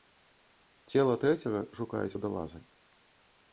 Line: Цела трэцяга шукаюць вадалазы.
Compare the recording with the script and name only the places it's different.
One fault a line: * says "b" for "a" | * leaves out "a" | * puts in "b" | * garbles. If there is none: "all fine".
all fine